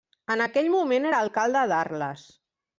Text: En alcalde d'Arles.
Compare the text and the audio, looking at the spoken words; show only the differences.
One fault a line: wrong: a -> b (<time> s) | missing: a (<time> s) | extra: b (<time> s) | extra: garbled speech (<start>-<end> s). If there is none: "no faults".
extra: aquell moment era (0.4 s)